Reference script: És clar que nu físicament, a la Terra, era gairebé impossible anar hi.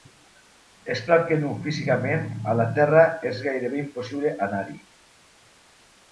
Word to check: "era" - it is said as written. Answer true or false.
false